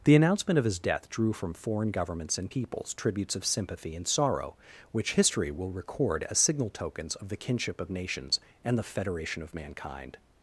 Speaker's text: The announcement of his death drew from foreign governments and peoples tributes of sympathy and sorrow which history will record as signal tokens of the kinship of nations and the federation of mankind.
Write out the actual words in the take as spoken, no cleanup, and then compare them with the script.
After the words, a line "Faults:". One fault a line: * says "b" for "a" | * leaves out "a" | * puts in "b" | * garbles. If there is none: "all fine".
The announcement of his death drew from foreign governments and peoples tributes of sympathy and sorrow which history will record as signal tokens of the kinship of nations and the federation of mankind.
Faults:
all fine